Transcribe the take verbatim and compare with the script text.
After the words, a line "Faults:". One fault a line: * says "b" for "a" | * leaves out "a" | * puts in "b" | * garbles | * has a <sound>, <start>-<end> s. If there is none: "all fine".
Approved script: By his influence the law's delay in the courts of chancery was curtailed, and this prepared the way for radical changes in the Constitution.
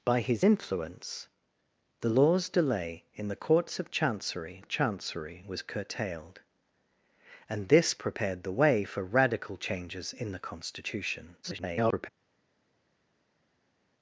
By his influence the law's delay in the courts of chancery of chancery was curtailed, and this prepared the way for radical changes in the Constitution. [garbled]
Faults:
* puts in "of chancery"
* garbles